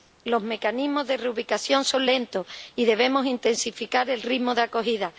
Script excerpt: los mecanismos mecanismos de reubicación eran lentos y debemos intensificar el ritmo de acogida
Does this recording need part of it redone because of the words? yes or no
yes